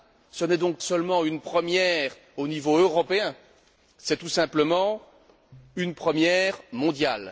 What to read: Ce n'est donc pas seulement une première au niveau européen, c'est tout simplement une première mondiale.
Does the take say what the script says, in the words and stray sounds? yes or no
no